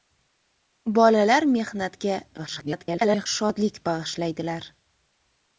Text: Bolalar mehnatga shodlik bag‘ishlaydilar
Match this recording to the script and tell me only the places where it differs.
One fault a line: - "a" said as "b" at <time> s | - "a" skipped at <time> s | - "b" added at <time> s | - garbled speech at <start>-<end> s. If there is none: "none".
- garbled speech at 2.4-3.3 s